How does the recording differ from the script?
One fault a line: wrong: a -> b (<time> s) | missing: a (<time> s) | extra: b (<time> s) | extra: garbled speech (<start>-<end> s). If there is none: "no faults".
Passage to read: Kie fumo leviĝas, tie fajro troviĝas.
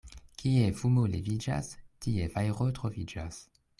no faults